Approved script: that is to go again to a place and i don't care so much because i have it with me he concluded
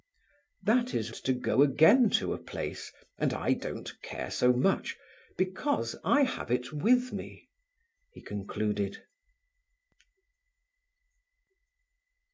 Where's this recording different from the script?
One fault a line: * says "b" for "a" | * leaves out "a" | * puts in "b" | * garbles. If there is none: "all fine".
all fine